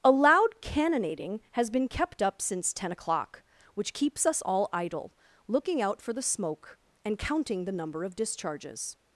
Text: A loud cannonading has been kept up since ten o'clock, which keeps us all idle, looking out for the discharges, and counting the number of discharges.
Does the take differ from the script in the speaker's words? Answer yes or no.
yes